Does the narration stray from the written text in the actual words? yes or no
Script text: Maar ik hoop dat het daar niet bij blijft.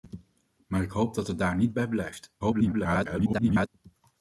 yes